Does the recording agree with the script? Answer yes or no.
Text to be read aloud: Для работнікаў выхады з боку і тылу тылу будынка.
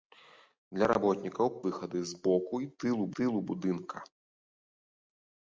yes